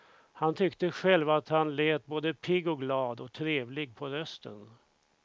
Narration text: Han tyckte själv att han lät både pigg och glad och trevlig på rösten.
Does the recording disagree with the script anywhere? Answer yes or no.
no